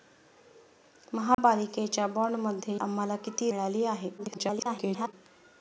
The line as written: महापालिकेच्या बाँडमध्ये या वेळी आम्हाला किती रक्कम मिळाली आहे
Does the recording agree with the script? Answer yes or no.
no